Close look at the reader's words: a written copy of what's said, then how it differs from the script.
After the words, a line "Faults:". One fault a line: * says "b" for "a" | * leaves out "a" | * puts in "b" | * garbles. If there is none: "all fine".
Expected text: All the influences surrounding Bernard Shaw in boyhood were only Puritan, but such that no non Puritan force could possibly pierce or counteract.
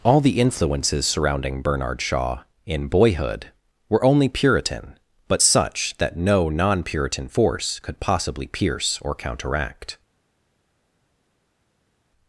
All the influences surrounding Bernard Shaw in boyhood were only Puritan, but such that no non Puritan force could possibly pierce or counteract.
Faults:
all fine